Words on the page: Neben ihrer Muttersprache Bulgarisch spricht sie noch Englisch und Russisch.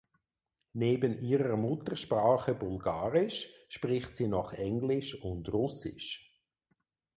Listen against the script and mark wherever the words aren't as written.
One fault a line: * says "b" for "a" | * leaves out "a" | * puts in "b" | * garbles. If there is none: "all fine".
all fine